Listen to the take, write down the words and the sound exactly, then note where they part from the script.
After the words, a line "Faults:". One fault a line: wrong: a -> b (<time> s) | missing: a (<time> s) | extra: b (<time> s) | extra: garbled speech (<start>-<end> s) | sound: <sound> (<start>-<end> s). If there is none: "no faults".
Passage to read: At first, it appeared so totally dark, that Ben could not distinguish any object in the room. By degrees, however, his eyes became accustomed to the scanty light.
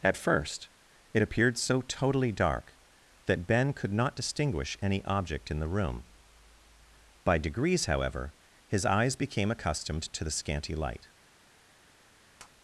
At first, it appeared so totally dark, that Ben could not distinguish any object in the room. By degrees, however, his eyes became accustomed to the scanty light.
Faults:
sound: tap (12.4-12.5 s)